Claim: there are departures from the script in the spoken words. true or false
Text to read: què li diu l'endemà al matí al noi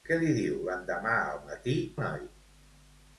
true